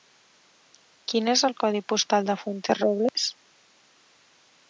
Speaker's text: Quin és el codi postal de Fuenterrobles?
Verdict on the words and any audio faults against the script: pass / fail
fail